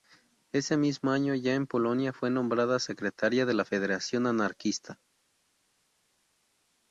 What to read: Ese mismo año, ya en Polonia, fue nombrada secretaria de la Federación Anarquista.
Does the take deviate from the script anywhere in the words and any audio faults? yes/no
no